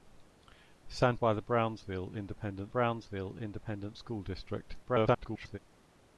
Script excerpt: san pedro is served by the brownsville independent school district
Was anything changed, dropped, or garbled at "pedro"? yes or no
yes